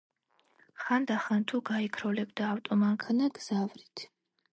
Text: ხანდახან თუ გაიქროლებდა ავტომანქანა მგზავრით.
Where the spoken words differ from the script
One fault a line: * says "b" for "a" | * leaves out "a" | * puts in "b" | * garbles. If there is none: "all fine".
all fine